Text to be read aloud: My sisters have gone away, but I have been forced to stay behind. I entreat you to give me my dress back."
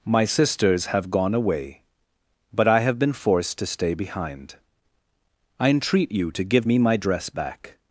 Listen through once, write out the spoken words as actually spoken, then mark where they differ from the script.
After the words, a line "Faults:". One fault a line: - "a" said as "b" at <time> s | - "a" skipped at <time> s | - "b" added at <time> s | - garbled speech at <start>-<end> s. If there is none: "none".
My sisters have gone away, but I have been forced to stay behind. I entreat you to give me my dress back."
Faults:
none